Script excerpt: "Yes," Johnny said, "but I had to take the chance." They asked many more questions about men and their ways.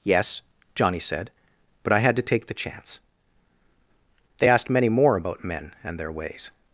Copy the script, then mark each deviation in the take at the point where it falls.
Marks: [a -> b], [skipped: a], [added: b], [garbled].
"Yes," Johnny said, "but I had to take the chance." They asked many more [skipped: questions] about men and their ways.